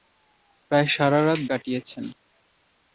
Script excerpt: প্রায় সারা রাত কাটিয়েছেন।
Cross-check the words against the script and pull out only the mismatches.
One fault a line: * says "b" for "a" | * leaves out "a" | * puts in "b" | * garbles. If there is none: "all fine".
all fine